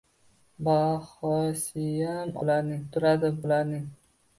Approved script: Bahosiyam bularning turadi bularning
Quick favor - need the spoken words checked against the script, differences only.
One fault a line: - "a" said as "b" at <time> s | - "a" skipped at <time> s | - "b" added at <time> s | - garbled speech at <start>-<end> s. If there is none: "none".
none